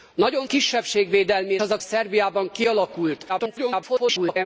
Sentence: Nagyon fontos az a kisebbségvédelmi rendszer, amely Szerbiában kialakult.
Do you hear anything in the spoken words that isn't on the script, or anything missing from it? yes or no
yes